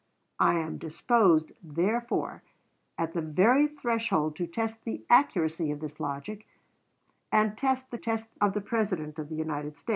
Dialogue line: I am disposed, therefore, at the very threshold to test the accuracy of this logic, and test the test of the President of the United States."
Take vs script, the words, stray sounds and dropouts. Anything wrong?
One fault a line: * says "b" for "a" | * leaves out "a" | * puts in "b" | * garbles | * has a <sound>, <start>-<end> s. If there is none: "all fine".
all fine